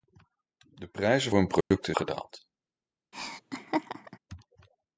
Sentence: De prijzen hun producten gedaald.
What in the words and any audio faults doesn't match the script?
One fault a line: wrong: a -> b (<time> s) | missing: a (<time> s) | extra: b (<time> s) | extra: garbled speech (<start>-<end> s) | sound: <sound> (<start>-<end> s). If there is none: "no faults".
sound: dropout (1.6-1.7 s)
sound: laugh (3.1-4.2 s)